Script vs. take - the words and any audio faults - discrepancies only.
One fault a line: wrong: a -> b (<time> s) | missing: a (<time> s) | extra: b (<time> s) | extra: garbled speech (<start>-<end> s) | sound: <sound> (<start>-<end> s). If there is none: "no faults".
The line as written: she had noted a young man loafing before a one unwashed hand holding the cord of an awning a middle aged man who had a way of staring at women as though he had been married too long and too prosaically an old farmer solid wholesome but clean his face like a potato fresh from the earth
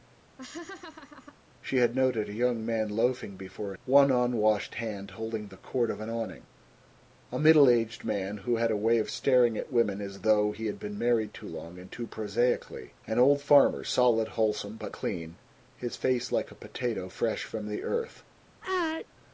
sound: laugh (0.4-1.4 s)
sound: sneeze (18.6-19.1 s)